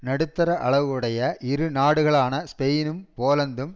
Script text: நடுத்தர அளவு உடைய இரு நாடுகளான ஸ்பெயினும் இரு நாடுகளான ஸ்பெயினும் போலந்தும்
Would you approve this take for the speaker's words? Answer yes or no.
no